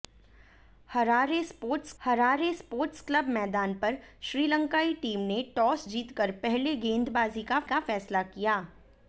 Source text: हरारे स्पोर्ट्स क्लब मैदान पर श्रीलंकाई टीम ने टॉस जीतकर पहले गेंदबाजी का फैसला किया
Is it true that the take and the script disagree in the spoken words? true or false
true